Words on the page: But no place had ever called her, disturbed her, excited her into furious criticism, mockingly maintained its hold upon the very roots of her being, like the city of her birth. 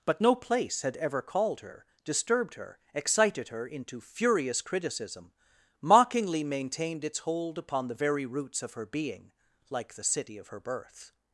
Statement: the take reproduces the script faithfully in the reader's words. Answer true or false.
true